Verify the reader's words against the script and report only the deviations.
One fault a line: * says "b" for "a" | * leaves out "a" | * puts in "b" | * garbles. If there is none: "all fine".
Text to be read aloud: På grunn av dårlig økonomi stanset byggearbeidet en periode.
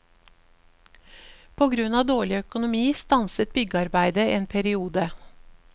all fine